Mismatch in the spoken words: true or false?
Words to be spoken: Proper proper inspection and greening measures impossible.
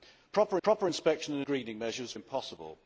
false